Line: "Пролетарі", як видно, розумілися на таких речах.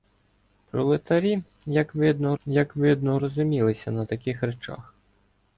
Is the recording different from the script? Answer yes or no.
yes